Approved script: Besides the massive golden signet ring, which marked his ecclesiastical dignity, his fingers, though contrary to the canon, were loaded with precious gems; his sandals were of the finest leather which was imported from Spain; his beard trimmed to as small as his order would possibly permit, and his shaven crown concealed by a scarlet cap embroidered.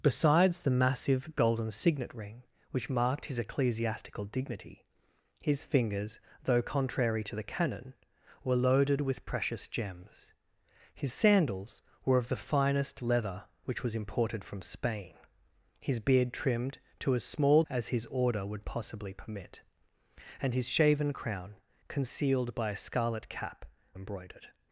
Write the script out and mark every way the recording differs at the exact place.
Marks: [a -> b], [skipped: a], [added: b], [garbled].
Besides the massive golden signet ring, which marked his ecclesiastical dignity, his fingers, though contrary to the canon, were loaded with precious gems; his sandals were of the finest leather which was imported from Spain; his beard trimmed to as small as his order would possibly permit, and his shaven crown concealed by a scarlet cap embroidered.